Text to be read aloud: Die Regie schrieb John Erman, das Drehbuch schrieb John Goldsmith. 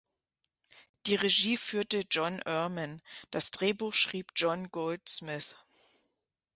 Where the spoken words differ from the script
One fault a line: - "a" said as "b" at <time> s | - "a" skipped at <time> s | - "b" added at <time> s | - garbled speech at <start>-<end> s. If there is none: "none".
- "schrieb" said as "führte" at 1.6 s